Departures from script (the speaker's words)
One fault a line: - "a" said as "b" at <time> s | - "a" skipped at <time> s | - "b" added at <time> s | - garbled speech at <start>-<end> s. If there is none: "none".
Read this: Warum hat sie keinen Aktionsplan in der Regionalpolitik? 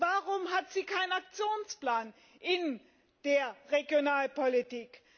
none